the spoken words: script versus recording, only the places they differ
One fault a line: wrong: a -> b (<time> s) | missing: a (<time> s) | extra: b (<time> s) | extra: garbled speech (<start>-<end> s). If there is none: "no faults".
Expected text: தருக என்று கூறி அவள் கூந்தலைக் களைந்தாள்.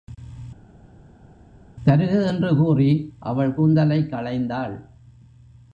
no faults